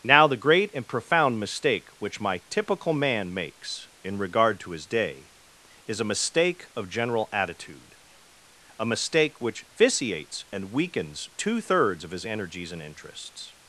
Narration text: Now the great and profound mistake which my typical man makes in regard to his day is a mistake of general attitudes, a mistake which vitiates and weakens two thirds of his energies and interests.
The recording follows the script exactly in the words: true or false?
false